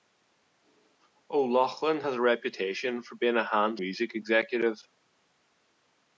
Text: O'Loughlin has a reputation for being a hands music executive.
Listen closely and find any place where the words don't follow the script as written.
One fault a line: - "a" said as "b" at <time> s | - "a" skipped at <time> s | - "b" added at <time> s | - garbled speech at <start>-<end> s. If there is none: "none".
none